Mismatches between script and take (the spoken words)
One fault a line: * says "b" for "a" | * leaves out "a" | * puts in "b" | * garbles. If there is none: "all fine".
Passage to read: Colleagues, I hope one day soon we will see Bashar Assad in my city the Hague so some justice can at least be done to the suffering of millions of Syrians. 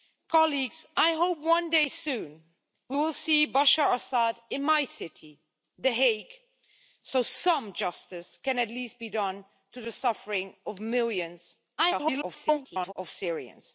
* garbles